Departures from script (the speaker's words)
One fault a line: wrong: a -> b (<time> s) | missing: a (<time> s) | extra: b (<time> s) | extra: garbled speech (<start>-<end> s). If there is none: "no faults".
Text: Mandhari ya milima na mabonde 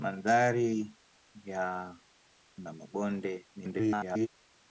missing: milima (1.9 s)
extra: garbled speech (3.6-4.3 s)